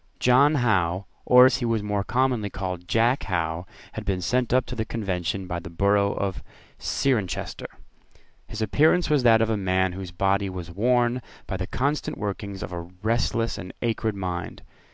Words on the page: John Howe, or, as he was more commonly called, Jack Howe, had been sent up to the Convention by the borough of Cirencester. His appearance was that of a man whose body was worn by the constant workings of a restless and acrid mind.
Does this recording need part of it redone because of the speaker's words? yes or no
no